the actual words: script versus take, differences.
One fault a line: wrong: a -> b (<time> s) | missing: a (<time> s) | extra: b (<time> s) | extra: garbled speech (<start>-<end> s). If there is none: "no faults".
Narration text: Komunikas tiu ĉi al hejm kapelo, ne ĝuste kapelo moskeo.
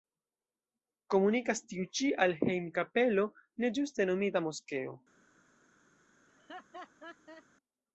wrong: kapelo -> nomita (4.1 s)